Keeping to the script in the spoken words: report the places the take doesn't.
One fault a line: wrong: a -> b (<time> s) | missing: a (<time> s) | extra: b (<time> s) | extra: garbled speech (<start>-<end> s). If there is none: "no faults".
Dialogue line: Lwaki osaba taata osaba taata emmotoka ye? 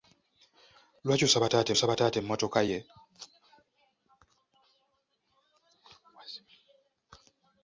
no faults